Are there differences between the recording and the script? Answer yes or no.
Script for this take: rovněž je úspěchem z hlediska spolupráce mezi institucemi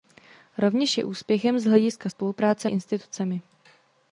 yes